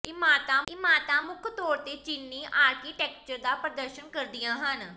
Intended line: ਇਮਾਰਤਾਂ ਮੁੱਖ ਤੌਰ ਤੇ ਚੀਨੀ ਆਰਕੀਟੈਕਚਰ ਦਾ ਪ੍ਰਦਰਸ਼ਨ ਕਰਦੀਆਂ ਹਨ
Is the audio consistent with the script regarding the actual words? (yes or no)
no